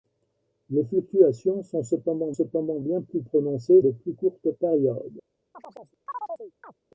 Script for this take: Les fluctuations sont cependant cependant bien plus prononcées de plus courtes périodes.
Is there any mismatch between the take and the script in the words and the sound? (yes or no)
yes